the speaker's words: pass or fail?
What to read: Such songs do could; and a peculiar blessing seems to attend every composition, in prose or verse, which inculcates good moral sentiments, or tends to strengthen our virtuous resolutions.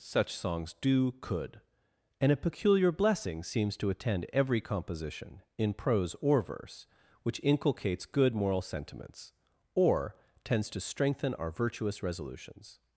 pass